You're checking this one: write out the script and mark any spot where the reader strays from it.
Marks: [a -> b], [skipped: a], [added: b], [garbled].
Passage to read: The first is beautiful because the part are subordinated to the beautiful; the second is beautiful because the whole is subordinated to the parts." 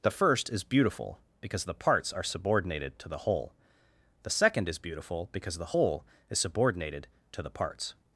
The first is beautiful because the [part -> parts] are subordinated to the [beautiful; -> whole] the second is beautiful because the whole is subordinated to the parts."